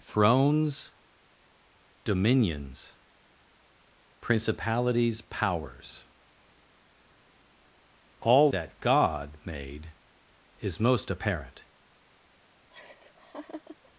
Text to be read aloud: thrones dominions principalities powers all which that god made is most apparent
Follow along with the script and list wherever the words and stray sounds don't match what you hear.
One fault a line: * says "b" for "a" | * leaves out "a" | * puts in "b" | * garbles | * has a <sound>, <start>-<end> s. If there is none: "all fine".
* leaves out "which"
* has a laugh, 12.7-13.9 s